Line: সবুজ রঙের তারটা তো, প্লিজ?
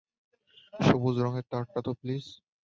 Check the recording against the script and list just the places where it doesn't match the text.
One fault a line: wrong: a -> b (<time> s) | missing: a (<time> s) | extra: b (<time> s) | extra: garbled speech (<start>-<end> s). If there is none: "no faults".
no faults